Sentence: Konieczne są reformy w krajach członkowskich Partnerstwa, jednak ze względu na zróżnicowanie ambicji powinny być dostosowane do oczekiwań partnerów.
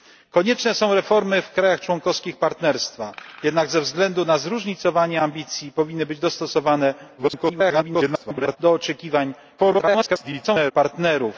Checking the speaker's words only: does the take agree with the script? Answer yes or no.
no